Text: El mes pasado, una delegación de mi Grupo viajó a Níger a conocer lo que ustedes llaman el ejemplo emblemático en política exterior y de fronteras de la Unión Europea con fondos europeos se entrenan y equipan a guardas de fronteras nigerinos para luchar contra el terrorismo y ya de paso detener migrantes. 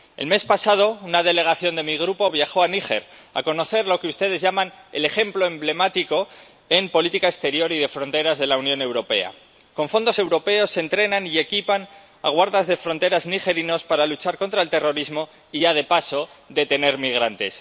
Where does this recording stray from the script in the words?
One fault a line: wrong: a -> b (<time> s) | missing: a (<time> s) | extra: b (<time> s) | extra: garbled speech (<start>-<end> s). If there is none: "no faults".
no faults